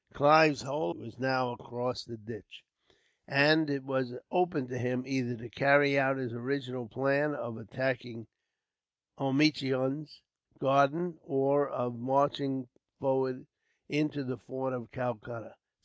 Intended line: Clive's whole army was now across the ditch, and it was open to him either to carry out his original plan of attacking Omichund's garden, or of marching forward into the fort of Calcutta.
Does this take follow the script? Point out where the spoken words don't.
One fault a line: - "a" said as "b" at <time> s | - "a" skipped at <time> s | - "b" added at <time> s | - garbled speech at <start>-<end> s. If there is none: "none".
- "army" skipped at 0.9 s